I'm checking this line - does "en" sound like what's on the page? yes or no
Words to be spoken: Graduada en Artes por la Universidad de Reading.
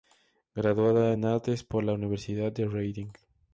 yes